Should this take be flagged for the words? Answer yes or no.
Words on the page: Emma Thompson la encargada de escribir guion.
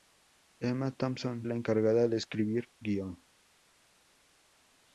no